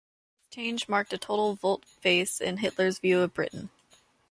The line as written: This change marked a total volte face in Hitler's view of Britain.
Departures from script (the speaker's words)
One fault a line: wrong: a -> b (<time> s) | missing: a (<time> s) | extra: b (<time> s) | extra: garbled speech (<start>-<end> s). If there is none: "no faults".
no faults